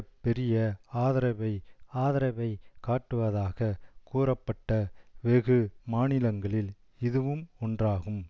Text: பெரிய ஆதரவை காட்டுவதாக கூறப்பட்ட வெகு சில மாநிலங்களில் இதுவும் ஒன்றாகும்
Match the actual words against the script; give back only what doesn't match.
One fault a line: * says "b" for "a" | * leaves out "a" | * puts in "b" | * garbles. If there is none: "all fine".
* puts in "ஆதரவை"
* leaves out "சில"